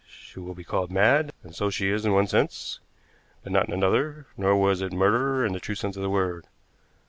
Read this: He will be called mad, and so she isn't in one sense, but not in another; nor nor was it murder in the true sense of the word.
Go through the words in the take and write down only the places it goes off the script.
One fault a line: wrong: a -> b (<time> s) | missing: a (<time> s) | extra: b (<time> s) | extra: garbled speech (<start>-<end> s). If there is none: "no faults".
wrong: He -> She (0.1 s)
wrong: isn't -> is (1.9 s)
missing: nor (4.6 s)